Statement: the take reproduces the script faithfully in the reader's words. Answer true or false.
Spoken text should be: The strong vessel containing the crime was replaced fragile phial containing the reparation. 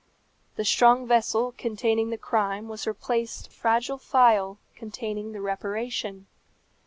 true